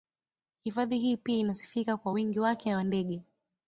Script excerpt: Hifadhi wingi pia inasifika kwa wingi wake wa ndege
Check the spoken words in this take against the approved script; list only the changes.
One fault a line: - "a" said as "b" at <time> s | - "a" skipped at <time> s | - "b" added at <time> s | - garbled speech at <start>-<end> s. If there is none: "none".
- "wingi" said as "hii" at 1.0 s